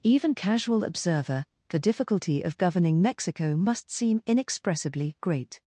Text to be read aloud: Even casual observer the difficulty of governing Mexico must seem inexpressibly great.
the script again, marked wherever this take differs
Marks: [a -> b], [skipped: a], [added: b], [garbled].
Even casual observer the difficulty of governing Mexico must seem inexpressibly great.